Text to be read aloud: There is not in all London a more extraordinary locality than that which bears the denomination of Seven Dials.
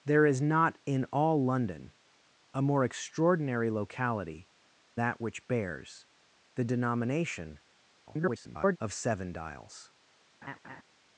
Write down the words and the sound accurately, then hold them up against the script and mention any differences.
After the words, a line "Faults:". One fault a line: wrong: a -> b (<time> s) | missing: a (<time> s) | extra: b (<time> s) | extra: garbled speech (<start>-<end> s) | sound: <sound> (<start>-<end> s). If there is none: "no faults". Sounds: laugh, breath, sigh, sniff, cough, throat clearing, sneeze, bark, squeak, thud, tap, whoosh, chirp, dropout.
There is not in all London a more extraordinary locality that which bears the denomination [garbled] of Seven Dials.
Faults:
missing: than (4.5 s)
extra: garbled speech (8.1-8.8 s)
sound: laugh (10.4-10.8 s)